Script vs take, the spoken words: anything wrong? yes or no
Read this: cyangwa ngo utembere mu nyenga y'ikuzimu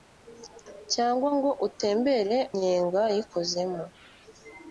yes